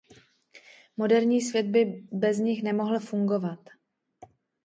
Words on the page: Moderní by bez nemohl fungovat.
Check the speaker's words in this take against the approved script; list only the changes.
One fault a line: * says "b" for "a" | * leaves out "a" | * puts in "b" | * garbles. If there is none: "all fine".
* puts in "svět"
* puts in "nich"